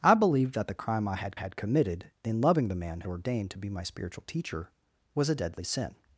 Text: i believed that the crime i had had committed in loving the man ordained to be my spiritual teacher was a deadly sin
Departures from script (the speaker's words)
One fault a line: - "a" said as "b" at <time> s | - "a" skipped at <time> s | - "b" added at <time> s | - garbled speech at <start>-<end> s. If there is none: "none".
none